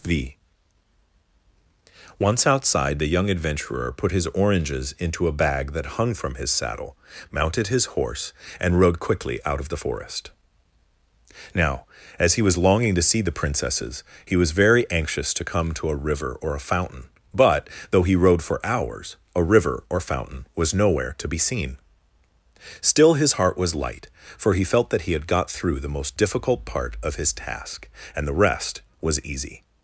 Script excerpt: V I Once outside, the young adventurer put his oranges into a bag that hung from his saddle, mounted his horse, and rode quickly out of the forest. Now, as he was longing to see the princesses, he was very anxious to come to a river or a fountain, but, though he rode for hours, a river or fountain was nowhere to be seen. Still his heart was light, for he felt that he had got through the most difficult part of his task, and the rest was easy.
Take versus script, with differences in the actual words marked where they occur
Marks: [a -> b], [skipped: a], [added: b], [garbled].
V [skipped: I] Once outside, the young adventurer put his oranges into a bag that hung from his saddle, mounted his horse, and rode quickly out of the forest. Now, as he was longing to see the princesses, he was very anxious to come to a river or a fountain, but, though he rode for hours, a river or fountain was nowhere to be seen. Still his heart was light, for he felt that he had got through the most difficult part of his task, and the rest was easy.